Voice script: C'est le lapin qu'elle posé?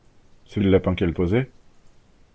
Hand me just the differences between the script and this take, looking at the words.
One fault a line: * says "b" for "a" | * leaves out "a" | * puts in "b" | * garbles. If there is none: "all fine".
all fine